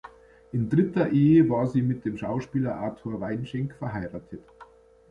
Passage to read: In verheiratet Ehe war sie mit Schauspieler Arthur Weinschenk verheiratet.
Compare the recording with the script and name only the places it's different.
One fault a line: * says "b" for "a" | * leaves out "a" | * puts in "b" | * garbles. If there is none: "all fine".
* says "dritter" for "verheiratet"
* puts in "dem"